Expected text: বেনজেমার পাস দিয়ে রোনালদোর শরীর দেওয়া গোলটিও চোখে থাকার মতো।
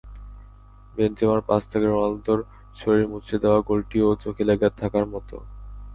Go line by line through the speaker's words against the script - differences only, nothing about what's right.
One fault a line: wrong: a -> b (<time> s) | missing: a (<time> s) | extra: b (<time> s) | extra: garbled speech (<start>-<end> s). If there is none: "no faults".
wrong: দিয়ে -> থেকে (1.7 s)
extra: মুচড়ে (3.1 s)
extra: লেগে (4.4 s)